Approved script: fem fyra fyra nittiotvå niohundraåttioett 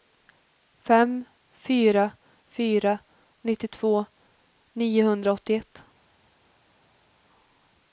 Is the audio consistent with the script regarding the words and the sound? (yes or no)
yes